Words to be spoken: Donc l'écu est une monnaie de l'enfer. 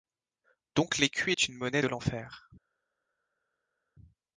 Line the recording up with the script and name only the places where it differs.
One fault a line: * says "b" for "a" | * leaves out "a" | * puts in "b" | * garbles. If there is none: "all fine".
all fine